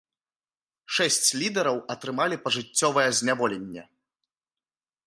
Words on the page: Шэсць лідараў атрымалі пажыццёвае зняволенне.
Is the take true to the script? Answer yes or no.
yes